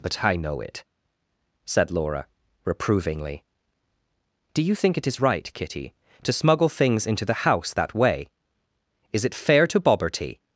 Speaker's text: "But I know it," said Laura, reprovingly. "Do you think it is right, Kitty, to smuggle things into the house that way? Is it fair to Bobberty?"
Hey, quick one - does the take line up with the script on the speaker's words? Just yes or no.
yes